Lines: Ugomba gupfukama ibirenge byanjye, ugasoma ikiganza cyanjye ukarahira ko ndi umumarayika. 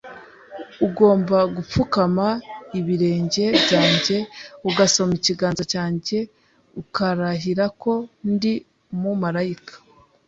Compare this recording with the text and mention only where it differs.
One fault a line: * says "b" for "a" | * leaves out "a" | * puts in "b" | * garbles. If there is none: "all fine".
all fine